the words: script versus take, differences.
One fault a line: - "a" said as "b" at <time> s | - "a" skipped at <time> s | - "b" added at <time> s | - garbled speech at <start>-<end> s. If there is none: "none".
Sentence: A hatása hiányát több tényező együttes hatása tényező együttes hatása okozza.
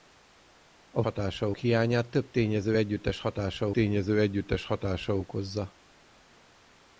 none